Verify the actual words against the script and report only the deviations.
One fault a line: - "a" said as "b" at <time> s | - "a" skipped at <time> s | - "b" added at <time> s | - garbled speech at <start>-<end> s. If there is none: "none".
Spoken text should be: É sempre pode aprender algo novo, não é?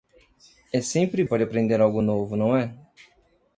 none